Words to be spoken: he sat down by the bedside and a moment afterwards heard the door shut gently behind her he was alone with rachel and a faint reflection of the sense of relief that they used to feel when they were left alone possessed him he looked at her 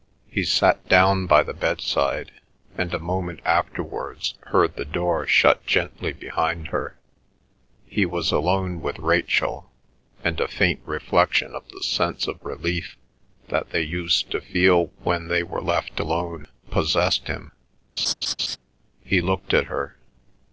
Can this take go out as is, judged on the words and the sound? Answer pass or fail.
fail